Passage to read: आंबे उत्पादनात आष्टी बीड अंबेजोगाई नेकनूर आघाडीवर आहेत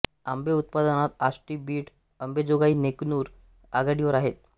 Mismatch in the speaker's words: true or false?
false